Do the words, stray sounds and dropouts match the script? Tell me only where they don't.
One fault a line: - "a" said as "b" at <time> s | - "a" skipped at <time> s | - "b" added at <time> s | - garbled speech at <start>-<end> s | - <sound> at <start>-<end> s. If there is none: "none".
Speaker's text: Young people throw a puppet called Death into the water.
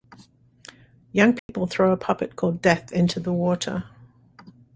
- dropout at 1.4-1.5 s